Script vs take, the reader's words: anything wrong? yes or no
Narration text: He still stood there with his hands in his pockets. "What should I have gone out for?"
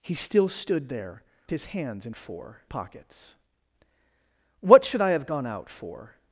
yes